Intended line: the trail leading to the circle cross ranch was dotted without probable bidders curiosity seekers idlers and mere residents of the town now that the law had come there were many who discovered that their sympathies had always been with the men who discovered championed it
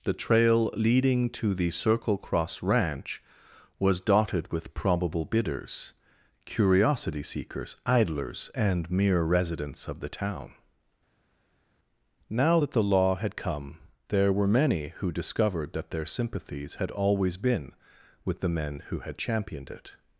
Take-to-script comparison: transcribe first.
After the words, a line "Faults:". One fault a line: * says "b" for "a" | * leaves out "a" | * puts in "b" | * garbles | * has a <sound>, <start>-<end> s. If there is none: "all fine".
the trail leading to the circle cross ranch was dotted with probable bidders curiosity seekers idlers and mere residents of the town now that the law had come there were many who discovered that their sympathies had always been with the men who had championed it
Faults:
* says "with" for "without"
* says "had" for "discovered"